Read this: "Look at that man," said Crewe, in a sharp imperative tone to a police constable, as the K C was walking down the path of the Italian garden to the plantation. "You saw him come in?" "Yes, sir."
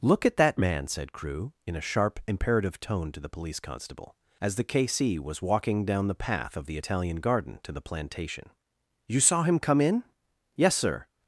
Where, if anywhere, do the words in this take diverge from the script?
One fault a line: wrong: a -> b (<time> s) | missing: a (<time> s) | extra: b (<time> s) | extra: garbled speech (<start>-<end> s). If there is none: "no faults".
wrong: a -> the (3.2 s)